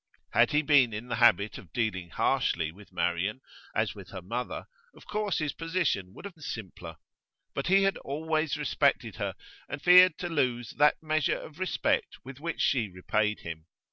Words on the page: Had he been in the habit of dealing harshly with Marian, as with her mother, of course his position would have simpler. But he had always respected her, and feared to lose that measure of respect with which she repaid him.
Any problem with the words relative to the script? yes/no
no